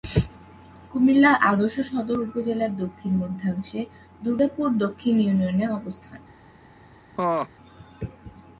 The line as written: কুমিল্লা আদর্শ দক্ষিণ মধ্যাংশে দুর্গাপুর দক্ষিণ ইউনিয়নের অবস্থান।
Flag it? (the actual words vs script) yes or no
yes